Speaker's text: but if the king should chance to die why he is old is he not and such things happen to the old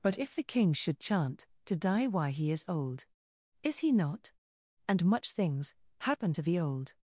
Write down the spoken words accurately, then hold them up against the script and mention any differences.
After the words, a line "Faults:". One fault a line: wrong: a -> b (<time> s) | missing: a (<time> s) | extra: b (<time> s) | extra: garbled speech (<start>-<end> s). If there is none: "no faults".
but if the king should chant to die why he is old is he not and much things happen to the old
Faults:
wrong: chance -> chant (1.0 s)
wrong: such -> much (5.0 s)